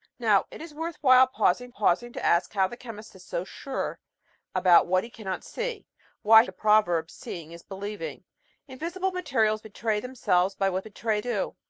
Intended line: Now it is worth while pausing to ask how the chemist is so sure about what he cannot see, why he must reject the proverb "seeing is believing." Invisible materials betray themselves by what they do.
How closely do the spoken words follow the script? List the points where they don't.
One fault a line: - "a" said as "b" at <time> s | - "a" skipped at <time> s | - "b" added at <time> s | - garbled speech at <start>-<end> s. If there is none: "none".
- "pausing" added at 1.7 s
- "he must reject" skipped at 6.4 s
- "they" said as "betray" at 10.8 s